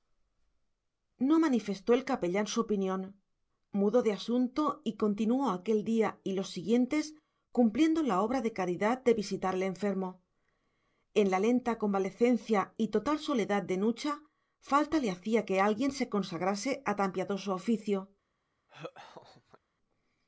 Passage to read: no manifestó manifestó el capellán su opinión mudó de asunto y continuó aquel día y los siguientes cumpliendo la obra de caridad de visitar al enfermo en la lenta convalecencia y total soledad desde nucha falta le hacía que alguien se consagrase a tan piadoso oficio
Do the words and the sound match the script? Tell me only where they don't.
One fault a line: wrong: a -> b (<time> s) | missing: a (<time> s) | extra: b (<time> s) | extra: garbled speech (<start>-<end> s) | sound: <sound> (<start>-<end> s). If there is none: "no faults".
missing: manifestó (1.9 s)
wrong: desde -> de (13.6 s)
sound: laugh (18.7-19.6 s)